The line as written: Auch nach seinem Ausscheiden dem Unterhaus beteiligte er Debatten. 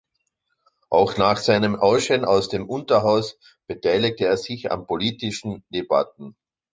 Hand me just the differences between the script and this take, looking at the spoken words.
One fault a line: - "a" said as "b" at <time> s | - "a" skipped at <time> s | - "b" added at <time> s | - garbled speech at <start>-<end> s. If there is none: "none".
- "aus" added at 2.2 s
- "sich an politischen" added at 4.4 s